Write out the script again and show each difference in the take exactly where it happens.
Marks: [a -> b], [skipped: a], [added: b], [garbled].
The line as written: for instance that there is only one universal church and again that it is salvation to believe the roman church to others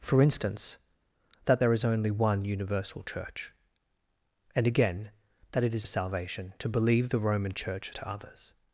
for instance that there is only one universal church and again that it is salvation to believe the roman church to others